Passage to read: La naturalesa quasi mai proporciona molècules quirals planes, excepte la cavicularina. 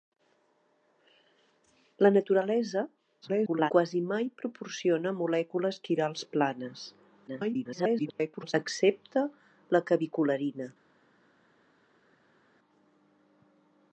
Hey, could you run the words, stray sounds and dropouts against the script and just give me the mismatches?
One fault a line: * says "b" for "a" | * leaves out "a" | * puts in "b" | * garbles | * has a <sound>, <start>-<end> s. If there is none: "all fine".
* garbles
* garbles